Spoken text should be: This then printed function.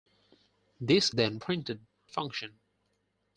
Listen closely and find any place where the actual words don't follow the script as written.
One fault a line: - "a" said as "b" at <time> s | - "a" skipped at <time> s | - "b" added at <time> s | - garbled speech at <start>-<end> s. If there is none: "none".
none